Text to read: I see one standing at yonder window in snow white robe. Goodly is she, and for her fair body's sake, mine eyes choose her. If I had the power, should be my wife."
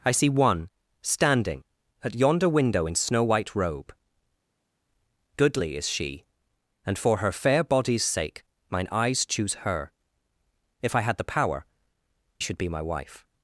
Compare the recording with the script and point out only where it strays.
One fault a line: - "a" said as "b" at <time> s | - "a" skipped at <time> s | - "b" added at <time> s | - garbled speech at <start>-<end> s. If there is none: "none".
none